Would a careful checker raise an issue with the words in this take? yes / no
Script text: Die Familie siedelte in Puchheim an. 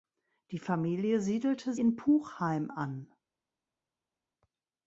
no